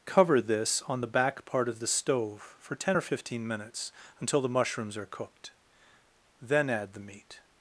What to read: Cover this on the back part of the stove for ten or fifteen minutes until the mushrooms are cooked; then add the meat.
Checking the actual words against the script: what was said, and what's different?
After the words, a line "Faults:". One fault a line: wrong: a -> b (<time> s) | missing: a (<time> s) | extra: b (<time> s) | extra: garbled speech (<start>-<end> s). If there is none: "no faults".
Cover this on the back part of the stove for ten or fifteen minutes until the mushrooms are cooked; then add the meat.
Faults:
no faults